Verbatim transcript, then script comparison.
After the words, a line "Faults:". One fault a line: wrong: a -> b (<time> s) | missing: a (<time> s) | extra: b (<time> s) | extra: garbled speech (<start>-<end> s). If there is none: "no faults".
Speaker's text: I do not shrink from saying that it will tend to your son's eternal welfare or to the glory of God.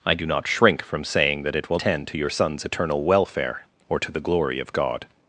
I do not shrink from saying that it will tend to your son's eternal welfare or to the glory of God.
Faults:
no faults